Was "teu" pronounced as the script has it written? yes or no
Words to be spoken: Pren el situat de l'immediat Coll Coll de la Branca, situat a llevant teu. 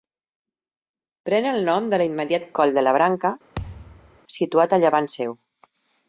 no